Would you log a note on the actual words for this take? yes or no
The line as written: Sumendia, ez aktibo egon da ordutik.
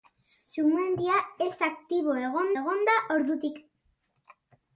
yes